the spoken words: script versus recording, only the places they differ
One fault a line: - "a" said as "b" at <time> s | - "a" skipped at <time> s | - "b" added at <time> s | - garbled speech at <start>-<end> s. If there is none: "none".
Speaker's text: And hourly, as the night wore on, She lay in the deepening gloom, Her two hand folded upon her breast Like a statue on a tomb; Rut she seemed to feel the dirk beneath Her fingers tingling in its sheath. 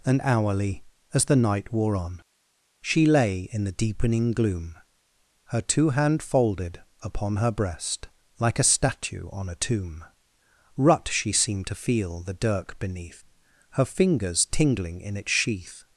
none